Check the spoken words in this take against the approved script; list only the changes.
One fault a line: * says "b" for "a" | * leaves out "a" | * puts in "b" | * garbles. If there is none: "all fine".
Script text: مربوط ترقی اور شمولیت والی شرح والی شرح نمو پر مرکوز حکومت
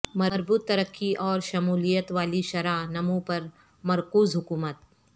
* leaves out "والی شرح"